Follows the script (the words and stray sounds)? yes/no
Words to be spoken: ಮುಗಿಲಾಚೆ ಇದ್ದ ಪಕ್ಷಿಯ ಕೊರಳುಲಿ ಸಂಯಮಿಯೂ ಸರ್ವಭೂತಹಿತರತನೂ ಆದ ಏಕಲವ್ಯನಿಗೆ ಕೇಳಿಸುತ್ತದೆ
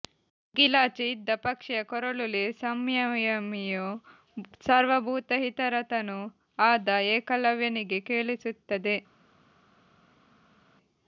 yes